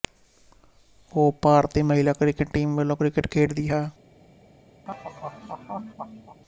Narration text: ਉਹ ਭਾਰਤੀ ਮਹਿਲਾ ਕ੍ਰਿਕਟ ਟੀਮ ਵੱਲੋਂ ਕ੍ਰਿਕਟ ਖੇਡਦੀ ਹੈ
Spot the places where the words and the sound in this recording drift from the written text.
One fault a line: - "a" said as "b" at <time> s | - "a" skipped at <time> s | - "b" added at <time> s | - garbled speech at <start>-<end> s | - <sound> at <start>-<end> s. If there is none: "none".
- laugh at 4.9-6.4 s